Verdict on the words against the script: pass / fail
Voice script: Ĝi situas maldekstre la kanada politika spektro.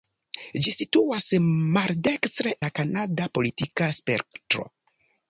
pass